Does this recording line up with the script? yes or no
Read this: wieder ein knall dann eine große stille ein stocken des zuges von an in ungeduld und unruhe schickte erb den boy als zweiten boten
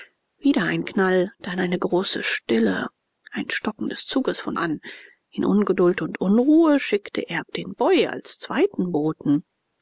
yes